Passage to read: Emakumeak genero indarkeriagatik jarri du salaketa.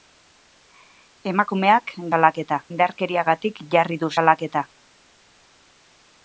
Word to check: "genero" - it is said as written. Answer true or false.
false